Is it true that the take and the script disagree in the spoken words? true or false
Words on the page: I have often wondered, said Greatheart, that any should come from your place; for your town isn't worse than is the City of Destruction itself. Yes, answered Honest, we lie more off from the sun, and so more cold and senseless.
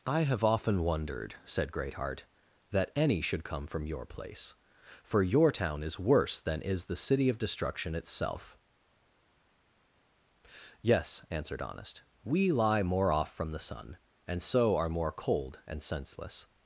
true